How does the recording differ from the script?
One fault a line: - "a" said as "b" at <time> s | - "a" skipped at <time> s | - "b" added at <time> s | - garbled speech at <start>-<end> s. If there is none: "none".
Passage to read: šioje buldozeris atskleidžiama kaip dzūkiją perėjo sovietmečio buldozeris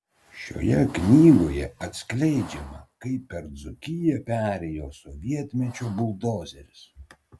- "buldozeris" said as "knygoje" at 0.9 s
- "per" added at 3.3 s